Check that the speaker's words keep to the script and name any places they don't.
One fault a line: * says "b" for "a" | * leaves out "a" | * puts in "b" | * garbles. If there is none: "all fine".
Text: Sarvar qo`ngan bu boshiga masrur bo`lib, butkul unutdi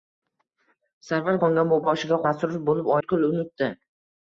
all fine